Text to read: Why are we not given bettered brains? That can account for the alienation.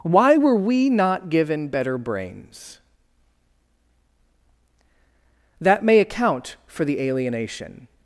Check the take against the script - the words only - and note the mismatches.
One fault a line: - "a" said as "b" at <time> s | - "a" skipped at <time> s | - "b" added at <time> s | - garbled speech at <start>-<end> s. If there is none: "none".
- "are" said as "were" at 0.4 s
- "bettered" said as "better" at 1.7 s
- "can" said as "may" at 5.8 s